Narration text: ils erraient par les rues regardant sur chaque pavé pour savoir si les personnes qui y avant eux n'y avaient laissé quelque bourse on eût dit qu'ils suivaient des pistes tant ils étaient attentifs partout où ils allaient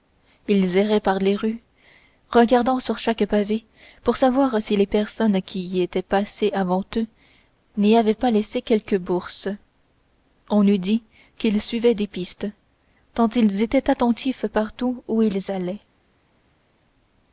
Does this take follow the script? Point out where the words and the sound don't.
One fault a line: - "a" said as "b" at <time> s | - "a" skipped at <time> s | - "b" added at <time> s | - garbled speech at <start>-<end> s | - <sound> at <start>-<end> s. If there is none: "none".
- "étaient passées" added at 5.8 s
- "pas" added at 8.2 s